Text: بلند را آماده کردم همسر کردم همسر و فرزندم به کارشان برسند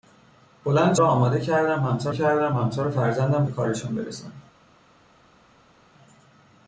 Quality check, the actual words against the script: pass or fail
pass